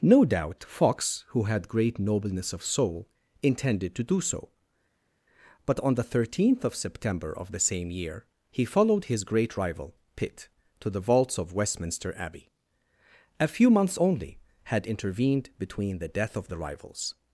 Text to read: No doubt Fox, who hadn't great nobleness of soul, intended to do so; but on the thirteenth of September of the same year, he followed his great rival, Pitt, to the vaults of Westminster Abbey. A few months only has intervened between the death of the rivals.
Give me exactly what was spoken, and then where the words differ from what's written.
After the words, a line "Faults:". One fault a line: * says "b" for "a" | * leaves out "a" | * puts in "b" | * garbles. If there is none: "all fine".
No doubt Fox, who had great nobleness of soul, intended to do so; but on the thirteenth of September of the same year, he followed his great rival, Pitt, to the vaults of Westminster Abbey. A few months only had intervened between the death of the rivals.
Faults:
* says "had" for "hadn't"
* says "had" for "has"